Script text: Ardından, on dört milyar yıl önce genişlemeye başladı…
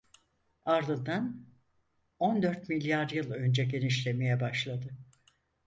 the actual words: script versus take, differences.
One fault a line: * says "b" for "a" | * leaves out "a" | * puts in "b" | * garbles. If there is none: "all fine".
all fine